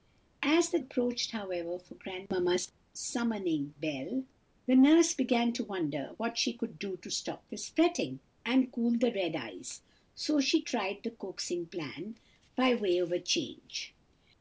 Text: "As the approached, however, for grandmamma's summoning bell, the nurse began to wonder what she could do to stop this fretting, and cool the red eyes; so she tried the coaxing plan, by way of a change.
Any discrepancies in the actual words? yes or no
no